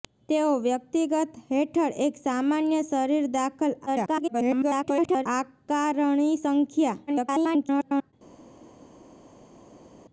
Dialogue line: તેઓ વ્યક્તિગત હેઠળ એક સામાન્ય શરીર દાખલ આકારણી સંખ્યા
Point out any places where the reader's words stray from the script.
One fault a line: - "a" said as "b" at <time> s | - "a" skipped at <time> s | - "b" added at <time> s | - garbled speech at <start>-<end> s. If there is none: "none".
- garbled speech at 3.9-5.3 s
- garbled speech at 7.1-8.1 s